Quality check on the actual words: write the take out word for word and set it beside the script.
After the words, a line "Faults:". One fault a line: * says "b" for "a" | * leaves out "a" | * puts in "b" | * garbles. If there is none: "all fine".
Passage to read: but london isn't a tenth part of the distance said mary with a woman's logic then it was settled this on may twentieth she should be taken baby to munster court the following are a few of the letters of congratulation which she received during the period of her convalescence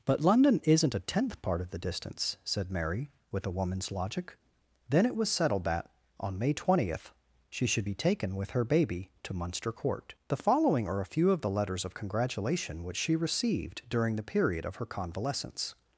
but london isn't a tenth part of the distance said mary with a woman's logic then it was settled that on may twentieth she should be taken with her baby to munster court the following are a few of the letters of congratulation which she received during the period of her convalescence
Faults:
* says "that" for "this"
* puts in "with her"